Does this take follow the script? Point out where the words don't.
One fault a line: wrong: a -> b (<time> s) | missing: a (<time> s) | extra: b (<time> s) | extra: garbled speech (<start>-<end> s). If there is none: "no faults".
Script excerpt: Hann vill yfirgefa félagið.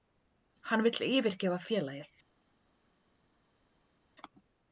no faults